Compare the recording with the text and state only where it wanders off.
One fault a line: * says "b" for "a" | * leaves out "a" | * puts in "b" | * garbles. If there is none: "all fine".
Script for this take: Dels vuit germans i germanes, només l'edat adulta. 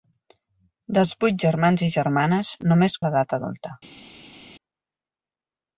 all fine